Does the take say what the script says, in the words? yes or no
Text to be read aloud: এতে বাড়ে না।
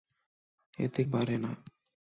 yes